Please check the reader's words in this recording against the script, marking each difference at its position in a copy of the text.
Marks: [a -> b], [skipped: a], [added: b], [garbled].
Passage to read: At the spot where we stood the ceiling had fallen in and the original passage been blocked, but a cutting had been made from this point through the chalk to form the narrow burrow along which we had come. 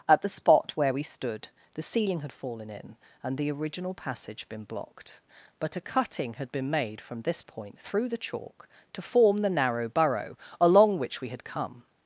At the spot where we stood the ceiling had fallen in and the original passage been blocked, but a cutting had been made from this point through the chalk to form the narrow burrow along which we had come.